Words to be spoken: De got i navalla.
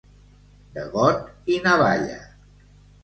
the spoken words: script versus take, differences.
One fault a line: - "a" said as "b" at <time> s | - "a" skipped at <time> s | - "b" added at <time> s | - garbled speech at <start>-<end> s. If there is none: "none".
none